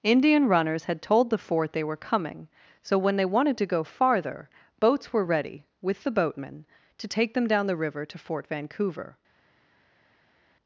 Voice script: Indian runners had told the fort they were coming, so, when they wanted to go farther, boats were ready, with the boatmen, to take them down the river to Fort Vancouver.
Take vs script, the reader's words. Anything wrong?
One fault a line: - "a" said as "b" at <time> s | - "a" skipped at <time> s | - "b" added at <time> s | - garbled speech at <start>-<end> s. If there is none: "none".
none